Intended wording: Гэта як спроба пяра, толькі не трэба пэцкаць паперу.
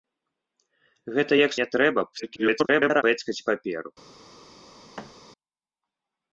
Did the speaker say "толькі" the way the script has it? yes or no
no